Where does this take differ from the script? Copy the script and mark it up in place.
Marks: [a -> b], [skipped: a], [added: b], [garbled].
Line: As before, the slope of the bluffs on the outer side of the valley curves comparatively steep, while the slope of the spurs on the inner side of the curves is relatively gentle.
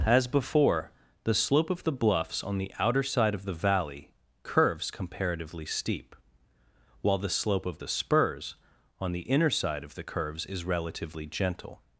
As before, the slope of the bluffs on the outer side of the valley curves comparatively steep, while the slope of the spurs on the inner side of the curves is relatively gentle.